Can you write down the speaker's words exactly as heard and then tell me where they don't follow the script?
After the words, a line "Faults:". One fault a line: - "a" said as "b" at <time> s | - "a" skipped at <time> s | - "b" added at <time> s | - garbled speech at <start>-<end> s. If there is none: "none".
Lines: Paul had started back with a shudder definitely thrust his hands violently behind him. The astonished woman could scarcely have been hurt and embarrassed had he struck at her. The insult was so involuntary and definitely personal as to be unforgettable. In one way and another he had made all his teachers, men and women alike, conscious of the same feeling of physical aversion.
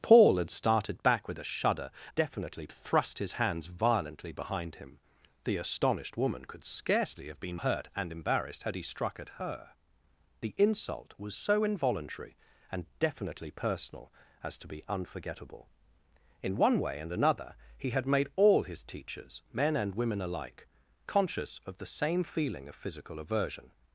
Paul had started back with a shudder definitely thrust his hands violently behind him. The astonished woman could scarcely have been hurt and embarrassed had he struck at her. The insult was so involuntary and definitely personal as to be unforgettable. In one way and another he had made all his teachers, men and women alike, conscious of the same feeling of physical aversion.
Faults:
none